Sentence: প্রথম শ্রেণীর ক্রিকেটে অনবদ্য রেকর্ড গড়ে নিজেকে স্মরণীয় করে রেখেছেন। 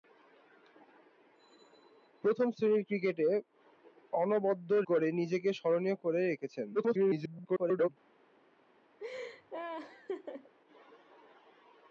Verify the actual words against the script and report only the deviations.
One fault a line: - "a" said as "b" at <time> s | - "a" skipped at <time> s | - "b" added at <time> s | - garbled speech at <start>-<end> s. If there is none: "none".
- "রেকর্ড" skipped at 4.7 s
- garbled speech at 6.7-7.9 s